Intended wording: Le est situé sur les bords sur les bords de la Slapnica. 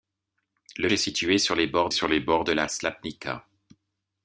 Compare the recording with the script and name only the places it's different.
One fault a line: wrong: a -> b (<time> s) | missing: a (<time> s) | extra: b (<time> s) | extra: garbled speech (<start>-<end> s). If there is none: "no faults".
no faults